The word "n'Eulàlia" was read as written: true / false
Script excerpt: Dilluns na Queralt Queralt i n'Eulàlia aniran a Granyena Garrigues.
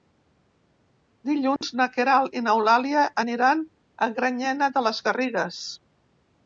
true